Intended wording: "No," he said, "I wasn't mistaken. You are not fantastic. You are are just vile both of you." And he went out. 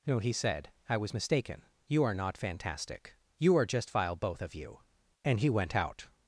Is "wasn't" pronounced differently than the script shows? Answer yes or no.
yes